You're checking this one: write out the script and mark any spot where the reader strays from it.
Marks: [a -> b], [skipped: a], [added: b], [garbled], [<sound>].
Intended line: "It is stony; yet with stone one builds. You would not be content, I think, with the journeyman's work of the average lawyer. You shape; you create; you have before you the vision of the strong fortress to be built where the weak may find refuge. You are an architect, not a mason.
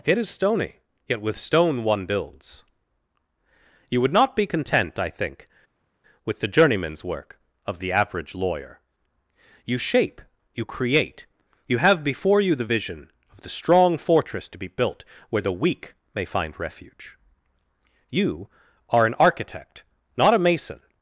"It is stony; yet with stone one builds. You would not be content, I think, with the journeyman's work of the average lawyer. You shape; you create; you have before you the vision of the strong fortress to be built where the weak may find refuge. You are an architect, not a mason.